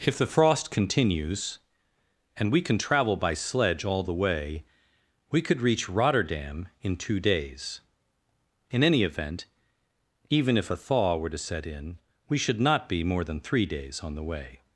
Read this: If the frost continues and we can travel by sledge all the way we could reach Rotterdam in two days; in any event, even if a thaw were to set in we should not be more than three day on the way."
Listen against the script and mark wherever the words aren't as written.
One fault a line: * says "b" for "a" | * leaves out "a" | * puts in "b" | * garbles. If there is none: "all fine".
* says "days" for "day"